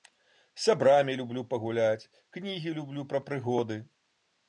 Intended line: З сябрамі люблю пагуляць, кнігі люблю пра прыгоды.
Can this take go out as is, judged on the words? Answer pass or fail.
pass